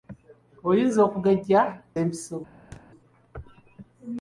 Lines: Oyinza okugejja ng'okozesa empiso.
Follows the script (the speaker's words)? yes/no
no